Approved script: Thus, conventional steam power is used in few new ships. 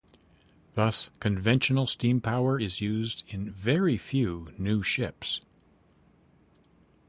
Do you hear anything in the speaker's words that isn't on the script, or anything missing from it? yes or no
yes